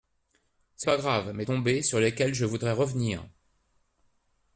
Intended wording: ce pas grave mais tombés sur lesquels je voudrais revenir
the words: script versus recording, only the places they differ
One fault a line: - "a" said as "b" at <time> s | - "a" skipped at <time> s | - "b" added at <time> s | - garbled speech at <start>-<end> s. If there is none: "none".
none